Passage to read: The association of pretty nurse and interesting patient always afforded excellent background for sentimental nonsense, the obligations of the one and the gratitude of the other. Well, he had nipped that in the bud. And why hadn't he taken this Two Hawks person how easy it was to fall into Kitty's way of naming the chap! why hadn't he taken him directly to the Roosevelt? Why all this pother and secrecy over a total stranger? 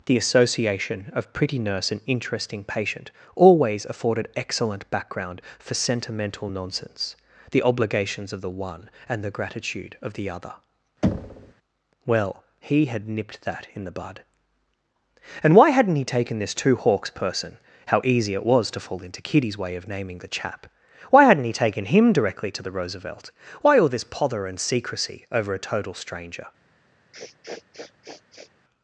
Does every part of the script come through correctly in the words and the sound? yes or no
no